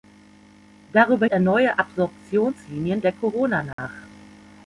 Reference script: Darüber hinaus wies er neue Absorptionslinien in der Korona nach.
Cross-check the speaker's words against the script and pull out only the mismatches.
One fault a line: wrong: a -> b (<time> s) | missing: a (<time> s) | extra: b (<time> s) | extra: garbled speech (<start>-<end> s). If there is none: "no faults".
missing: hinaus wies (1.3 s)
missing: in (3.0 s)